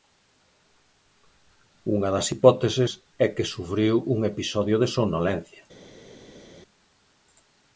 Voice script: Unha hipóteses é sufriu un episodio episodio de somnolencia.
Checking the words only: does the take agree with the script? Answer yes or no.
no